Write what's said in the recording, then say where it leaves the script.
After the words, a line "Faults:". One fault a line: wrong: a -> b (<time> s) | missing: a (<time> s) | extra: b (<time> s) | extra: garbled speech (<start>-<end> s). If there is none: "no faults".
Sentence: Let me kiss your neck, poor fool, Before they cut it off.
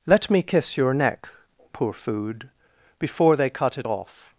Let me kiss your neck, poor food, Before they cut it off.
Faults:
wrong: fool -> food (1.9 s)